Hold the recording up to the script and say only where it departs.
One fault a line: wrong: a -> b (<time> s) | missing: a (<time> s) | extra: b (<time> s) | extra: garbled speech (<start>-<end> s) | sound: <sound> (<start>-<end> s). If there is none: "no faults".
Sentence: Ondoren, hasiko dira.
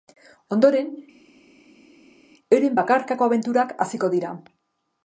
extra: euren bakarkako abenturak (2.6 s)